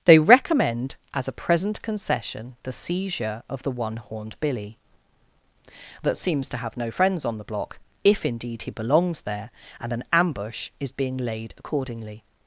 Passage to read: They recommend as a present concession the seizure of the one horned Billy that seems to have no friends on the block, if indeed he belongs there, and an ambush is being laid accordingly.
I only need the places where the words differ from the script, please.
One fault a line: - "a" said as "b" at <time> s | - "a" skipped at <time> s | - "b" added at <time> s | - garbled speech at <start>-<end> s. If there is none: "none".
none